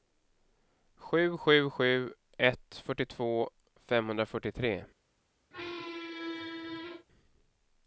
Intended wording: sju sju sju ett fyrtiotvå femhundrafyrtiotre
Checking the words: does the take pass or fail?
pass